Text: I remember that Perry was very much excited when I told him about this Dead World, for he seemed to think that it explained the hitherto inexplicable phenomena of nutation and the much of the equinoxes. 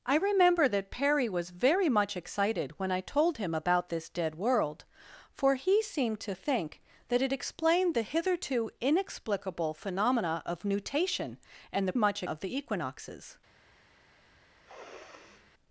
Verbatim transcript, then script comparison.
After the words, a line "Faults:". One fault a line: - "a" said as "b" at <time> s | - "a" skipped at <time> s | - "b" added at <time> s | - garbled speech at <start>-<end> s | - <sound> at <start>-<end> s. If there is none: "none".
I remember that Perry was very much excited when I told him about this Dead World, for he seemed to think that it explained the hitherto inexplicable phenomena of nutation and the much of the equinoxes.
Faults:
- sniff at 14.6-15.5 s